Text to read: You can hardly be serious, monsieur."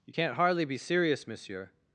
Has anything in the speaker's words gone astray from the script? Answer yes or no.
yes